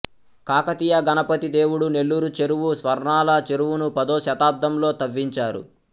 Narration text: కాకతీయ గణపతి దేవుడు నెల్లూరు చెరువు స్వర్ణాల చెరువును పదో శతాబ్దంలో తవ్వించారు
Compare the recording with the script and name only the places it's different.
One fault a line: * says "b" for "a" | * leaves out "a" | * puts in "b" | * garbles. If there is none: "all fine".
all fine